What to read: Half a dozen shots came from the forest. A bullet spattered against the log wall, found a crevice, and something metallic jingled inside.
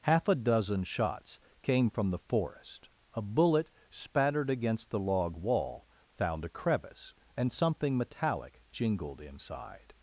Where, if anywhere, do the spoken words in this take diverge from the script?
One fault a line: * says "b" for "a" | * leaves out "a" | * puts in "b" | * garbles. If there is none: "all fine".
all fine